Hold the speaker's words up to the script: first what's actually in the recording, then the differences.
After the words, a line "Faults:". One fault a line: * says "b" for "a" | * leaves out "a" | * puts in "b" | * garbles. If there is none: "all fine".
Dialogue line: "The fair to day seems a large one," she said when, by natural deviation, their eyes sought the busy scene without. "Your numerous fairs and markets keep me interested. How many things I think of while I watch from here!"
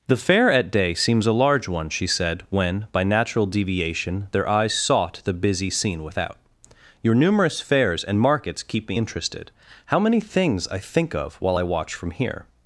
"The fair at day seems a large one," she said when, by natural deviation, their eyes sought the busy scene without. "Your numerous fairs and markets keep me interested. How many things I think of while I watch from here!"
Faults:
* says "at" for "to"